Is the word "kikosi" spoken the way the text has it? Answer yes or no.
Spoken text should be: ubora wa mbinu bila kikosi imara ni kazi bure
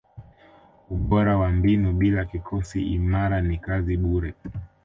yes